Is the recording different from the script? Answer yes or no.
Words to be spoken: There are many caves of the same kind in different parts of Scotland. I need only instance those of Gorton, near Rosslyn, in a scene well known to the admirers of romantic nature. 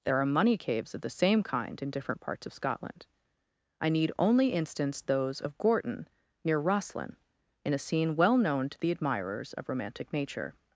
yes